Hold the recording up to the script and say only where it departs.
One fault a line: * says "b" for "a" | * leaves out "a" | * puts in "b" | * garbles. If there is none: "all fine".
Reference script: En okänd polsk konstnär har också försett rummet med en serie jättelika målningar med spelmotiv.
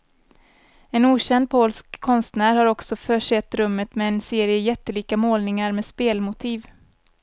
all fine